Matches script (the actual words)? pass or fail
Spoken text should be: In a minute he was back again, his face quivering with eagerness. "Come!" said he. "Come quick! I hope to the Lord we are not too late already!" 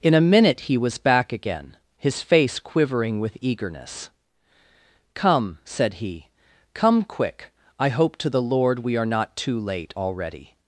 pass